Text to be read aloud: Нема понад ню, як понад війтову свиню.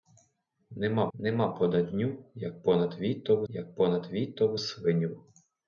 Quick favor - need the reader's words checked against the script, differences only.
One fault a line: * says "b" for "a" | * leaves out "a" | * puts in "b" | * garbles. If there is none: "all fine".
* puts in "нема"
* puts in "як понад війтову"